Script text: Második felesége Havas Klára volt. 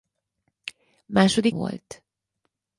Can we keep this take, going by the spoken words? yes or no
no